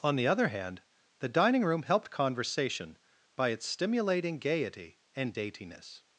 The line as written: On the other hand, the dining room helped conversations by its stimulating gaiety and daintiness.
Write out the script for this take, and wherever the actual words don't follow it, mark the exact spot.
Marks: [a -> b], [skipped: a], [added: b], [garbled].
On the other hand, the dining room helped [conversations -> conversation] by its stimulating gaiety and daintiness.